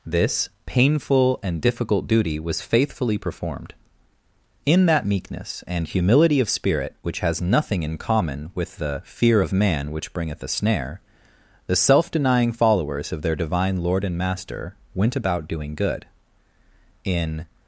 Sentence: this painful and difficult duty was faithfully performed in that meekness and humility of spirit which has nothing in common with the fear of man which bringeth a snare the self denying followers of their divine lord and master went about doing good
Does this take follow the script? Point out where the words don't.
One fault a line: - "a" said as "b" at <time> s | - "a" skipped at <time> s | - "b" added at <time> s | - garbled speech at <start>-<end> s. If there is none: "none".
- "in" added at 17.0 s